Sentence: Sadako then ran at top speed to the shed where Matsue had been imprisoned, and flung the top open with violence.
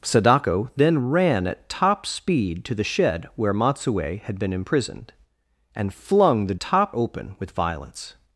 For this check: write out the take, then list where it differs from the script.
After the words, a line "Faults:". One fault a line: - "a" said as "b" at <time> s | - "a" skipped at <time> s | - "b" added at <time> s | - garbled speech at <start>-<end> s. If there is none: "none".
Sadako then ran at top speed to the shed where Matsue had been imprisoned, and flung the top open with violence.
Faults:
none